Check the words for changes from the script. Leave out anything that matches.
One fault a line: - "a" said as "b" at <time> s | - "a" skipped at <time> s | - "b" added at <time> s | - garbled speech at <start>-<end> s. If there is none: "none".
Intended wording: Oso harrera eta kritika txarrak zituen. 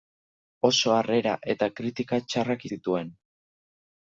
none